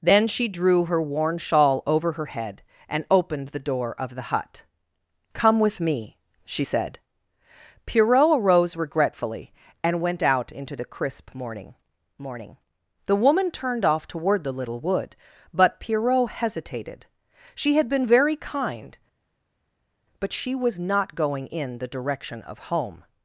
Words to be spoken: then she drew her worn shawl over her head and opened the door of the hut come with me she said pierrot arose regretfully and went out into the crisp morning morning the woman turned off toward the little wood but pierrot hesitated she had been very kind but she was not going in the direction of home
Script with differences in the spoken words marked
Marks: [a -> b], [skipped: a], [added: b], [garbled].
then she drew her worn shawl over her head and opened the door of the hut come with me she said pierrot arose regretfully and went out into the crisp morning morning the woman turned off toward the little wood but pierrot hesitated she had been very kind but she was not going in the direction of home